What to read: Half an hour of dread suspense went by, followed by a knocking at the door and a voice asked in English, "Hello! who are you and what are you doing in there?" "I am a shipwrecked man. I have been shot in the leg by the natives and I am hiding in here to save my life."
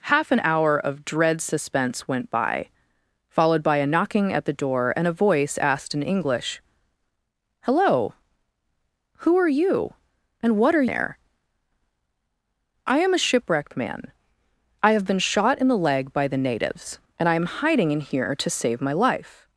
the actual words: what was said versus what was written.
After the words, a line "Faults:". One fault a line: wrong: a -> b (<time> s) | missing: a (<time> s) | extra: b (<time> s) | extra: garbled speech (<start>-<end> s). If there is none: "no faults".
Half an hour of dread suspense went by, followed by a knocking at the door and a voice asked in English, "Hello! who are you and what are there?" "I am a shipwrecked man. I have been shot in the leg by the natives and I am hiding in here to save my life."
Faults:
missing: you doing in (10.9 s)